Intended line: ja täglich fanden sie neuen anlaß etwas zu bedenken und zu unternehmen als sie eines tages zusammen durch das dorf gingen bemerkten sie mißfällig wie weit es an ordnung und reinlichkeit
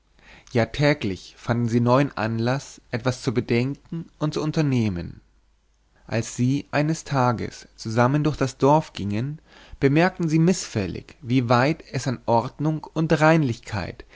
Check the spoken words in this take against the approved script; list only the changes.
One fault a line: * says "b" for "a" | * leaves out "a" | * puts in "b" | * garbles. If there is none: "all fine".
all fine